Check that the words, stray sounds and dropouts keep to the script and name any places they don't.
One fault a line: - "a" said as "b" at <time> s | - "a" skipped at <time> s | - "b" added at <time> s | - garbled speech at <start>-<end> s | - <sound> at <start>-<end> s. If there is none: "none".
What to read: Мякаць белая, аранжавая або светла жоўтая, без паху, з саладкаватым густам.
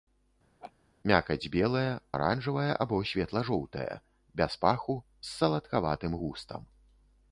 - laugh at 0.6-0.7 s